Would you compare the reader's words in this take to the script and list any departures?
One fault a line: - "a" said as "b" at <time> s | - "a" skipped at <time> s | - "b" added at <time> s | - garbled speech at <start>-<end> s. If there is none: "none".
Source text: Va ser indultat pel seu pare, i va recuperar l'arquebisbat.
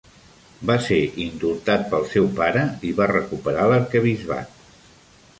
none